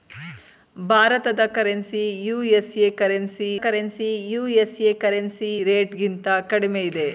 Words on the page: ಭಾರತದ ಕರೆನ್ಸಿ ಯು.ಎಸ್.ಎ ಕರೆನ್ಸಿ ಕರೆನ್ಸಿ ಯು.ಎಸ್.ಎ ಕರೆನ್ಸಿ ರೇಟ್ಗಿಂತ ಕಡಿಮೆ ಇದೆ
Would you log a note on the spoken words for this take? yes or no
no